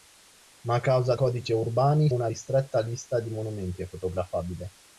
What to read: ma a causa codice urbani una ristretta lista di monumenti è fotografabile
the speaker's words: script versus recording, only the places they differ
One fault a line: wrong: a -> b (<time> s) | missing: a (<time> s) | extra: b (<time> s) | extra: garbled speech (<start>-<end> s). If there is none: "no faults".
no faults